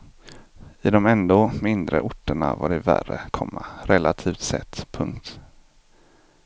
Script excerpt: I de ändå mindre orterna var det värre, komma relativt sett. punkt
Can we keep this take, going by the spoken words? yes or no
yes